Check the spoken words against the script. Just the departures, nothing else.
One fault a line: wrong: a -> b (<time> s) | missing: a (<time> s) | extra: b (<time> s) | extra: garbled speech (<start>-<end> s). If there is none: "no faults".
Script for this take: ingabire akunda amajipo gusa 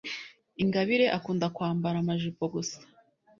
extra: kwambara (1.6 s)